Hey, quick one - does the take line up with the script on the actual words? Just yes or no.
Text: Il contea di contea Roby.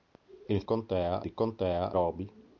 yes